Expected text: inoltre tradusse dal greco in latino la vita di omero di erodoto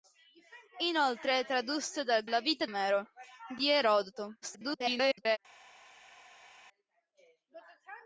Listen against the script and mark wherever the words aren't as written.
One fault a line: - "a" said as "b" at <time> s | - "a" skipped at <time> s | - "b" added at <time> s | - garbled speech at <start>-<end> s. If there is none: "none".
- "greco in latino" skipped at 2.2 s
- "di" skipped at 2.7 s
- garbled speech at 4.4-5.4 s